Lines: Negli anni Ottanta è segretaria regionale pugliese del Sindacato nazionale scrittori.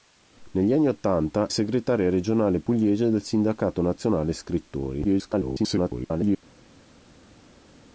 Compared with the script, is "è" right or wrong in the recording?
wrong